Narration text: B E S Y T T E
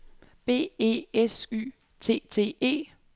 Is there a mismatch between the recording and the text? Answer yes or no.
no